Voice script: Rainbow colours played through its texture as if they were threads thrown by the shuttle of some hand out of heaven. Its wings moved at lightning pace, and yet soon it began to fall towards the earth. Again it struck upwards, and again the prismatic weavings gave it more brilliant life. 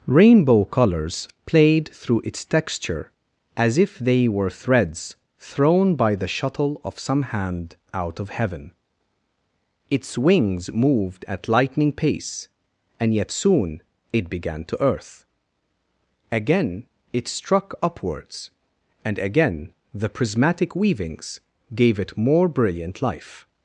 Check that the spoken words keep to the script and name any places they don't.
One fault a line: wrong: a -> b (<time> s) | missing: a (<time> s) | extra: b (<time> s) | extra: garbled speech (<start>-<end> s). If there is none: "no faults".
missing: fall towards the (14.8 s)